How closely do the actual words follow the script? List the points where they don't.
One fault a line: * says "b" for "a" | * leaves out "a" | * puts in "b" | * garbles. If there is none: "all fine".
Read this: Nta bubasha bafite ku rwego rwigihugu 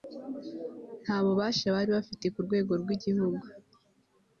* puts in "bari"